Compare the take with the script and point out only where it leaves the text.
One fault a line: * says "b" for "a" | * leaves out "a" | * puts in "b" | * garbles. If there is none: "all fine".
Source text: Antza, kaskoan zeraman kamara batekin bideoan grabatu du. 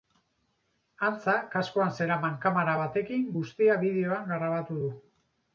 * puts in "guztia"